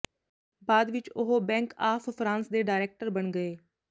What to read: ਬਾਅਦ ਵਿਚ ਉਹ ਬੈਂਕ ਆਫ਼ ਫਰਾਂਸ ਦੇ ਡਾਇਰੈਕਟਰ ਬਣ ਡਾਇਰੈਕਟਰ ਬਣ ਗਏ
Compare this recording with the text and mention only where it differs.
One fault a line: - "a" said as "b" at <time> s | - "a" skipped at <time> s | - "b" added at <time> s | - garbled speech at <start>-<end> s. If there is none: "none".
- "ਡਾਇਰੈਕਟਰ ਬਣ" skipped at 3.3 s